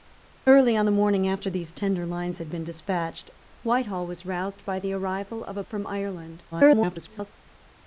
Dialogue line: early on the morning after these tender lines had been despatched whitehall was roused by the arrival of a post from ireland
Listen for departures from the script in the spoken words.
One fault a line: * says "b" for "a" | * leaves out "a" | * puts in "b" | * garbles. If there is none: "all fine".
* leaves out "post"
* garbles